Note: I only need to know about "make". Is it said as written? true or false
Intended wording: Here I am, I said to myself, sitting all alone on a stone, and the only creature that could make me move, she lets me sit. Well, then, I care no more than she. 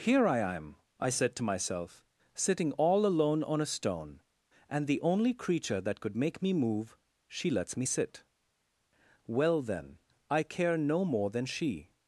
true